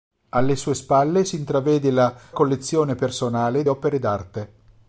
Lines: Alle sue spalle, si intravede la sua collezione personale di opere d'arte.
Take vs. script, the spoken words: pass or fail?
fail